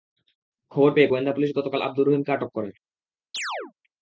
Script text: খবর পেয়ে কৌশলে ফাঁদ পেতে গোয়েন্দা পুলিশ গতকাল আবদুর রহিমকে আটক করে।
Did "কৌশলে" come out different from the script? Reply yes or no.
yes